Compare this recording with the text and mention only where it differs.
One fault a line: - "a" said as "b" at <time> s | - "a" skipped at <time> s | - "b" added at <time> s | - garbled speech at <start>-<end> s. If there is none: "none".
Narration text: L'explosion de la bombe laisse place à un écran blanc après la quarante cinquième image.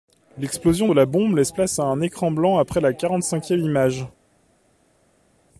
none